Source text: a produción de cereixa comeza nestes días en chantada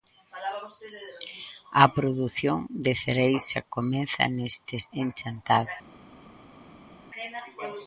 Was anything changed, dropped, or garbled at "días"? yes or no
yes